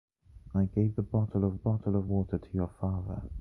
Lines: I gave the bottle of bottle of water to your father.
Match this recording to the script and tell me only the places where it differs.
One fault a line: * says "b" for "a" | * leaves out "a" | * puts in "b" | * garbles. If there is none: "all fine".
all fine